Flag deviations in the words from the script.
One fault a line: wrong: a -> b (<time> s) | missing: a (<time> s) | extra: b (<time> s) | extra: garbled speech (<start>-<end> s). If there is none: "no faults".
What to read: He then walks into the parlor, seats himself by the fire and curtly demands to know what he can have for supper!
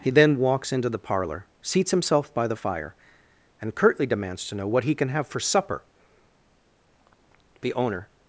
extra: The owner (7.6 s)